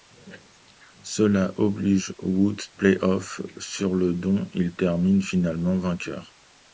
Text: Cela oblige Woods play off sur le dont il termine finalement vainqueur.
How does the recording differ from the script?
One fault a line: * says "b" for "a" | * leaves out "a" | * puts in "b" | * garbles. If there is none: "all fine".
all fine